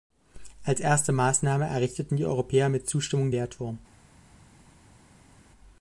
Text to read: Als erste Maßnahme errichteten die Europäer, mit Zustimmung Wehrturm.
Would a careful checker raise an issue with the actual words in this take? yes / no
no